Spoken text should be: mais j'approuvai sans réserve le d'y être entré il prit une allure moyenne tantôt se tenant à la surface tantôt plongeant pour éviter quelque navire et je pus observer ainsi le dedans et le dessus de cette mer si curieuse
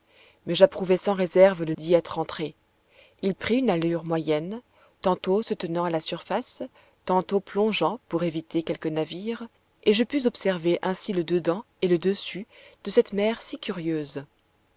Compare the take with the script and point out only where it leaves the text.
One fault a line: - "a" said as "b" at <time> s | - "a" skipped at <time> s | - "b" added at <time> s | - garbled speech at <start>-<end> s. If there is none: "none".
none